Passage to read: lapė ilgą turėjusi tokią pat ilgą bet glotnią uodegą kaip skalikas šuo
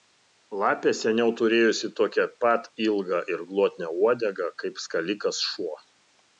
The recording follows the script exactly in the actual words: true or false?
false